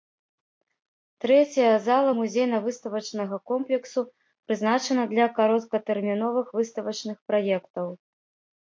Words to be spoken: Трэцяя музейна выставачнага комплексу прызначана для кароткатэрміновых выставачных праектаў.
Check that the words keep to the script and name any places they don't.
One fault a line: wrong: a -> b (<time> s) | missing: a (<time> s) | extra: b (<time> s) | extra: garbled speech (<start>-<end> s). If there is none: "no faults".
extra: зала (1.9 s)